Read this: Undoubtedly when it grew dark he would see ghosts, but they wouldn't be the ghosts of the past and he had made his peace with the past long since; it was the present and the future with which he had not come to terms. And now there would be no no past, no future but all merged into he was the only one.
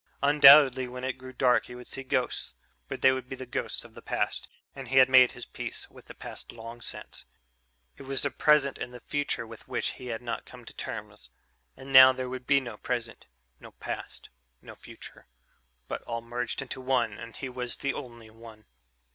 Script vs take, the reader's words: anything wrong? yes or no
yes